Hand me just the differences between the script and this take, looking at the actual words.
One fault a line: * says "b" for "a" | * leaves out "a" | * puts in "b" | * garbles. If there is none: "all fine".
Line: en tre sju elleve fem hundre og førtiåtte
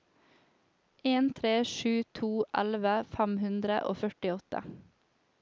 * puts in "to"